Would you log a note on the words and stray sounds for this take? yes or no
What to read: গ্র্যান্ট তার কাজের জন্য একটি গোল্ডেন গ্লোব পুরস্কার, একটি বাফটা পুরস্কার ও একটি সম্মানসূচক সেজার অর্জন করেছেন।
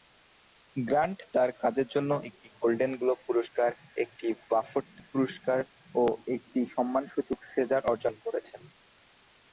no